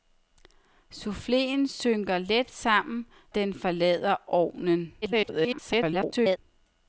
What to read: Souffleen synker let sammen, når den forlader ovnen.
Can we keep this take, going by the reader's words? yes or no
no